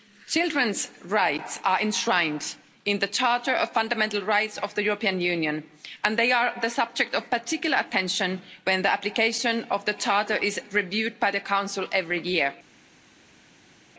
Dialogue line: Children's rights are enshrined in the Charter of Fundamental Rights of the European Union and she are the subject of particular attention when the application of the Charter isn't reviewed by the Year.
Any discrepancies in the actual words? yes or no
yes